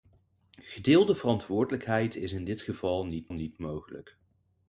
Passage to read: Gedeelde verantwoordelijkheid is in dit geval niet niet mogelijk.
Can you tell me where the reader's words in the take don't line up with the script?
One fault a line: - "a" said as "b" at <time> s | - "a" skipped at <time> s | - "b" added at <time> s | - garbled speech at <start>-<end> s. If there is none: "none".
none